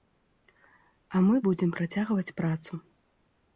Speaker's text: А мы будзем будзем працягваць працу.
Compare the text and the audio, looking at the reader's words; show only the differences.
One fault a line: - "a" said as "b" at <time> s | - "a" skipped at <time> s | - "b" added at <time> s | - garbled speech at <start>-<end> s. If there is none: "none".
- "будзем" skipped at 1.7 s